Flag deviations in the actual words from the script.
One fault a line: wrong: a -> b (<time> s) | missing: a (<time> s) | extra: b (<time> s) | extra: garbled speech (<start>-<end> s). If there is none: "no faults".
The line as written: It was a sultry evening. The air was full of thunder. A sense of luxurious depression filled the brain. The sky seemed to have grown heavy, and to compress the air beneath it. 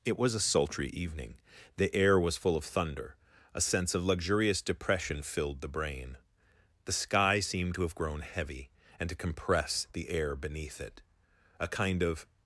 extra: A kind of (11.6 s)